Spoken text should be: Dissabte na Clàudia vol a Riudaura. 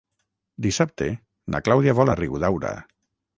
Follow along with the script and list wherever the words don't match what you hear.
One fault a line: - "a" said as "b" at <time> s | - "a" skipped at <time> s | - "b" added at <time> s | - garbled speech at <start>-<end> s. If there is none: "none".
none